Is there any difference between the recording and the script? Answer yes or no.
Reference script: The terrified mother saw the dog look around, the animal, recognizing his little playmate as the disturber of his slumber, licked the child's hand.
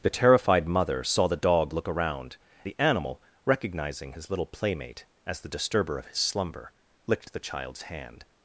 no